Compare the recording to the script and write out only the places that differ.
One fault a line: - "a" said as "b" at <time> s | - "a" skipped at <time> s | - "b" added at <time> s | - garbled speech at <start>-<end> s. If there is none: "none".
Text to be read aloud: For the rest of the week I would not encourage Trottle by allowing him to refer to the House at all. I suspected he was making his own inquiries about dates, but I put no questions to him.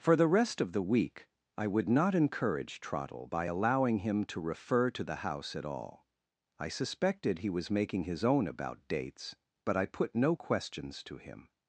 - "inquiries" skipped at 8.5 s